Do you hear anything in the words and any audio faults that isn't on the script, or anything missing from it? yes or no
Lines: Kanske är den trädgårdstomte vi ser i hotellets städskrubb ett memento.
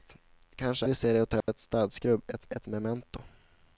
yes